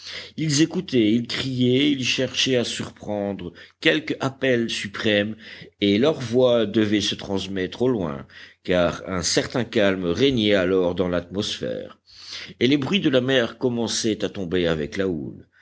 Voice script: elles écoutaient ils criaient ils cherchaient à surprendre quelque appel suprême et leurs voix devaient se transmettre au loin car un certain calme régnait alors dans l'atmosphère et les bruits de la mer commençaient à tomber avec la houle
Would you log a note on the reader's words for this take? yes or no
yes